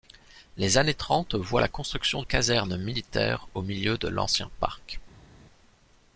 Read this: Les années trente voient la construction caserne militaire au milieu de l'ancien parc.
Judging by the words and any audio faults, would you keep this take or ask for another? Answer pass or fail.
pass